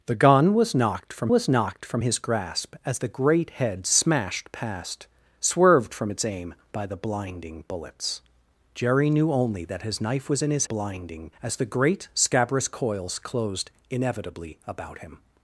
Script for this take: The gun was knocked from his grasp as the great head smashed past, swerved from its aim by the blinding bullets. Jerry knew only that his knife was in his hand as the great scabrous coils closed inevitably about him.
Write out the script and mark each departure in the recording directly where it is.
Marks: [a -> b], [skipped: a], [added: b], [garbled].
The gun was knocked from [added: was knocked from] his grasp as the great head smashed past, swerved from its aim by the blinding bullets. Jerry knew only that his knife was in his [hand -> blinding] as the great scabrous coils closed inevitably about him.